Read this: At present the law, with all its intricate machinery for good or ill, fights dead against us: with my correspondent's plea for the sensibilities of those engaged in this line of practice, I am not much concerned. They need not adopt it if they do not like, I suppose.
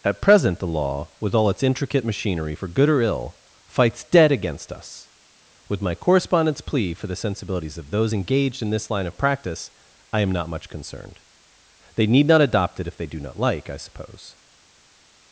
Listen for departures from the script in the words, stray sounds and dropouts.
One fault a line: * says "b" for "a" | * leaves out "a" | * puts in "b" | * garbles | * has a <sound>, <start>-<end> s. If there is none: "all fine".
all fine